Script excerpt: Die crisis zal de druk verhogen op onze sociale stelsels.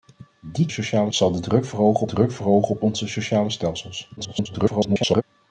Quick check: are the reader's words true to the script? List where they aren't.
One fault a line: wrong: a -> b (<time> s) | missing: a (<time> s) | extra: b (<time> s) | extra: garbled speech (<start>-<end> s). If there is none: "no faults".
wrong: crisis -> sociale (0.7 s)
extra: druk verhogen (2.0 s)
extra: garbled speech (4.2-5.2 s)